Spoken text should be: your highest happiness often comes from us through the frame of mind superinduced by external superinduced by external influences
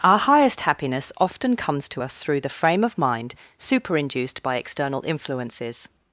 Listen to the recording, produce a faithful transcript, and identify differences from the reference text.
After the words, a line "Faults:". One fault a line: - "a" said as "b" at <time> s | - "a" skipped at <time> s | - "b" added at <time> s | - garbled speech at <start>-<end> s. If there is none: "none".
our highest happiness often comes to us through the frame of mind superinduced by external influences
Faults:
- "your" said as "our" at 0.0 s
- "from" said as "to" at 1.9 s
- "superinduced by external" skipped at 5.0 s